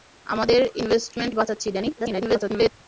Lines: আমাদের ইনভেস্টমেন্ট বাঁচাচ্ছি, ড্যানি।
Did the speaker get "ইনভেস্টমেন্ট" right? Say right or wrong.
right